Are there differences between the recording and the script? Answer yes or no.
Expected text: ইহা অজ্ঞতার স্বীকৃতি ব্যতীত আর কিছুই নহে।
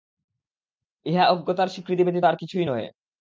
no